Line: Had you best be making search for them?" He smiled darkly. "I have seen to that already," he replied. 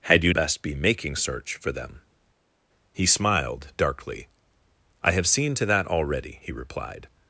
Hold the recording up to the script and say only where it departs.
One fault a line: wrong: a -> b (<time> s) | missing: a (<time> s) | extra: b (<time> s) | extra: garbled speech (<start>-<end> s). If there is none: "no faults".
no faults